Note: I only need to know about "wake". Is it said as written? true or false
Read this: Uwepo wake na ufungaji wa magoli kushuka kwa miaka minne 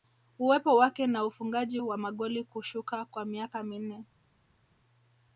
true